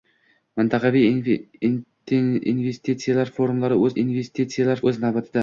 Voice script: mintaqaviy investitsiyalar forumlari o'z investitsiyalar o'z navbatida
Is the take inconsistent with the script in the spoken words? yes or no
no